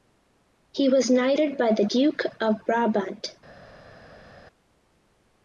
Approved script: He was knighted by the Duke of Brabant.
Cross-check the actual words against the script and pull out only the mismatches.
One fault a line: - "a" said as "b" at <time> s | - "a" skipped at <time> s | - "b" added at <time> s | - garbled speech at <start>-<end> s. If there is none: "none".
none